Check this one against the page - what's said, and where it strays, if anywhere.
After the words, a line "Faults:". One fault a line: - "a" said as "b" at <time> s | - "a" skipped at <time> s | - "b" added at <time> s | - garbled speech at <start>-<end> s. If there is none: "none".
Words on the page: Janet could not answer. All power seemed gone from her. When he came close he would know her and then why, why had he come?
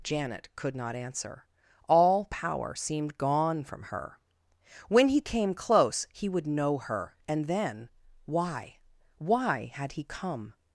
Janet could not answer. All power seemed gone from her. When he came close he would know her and then why, why had he come?
Faults:
none